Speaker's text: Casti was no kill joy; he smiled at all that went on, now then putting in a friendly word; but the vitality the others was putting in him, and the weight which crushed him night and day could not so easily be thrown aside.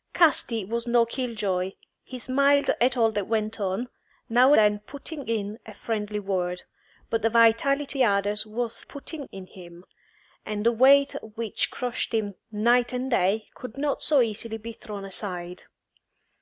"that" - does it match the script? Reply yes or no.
yes